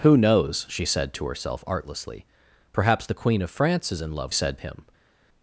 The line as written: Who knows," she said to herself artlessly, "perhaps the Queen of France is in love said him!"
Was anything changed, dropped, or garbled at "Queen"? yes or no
no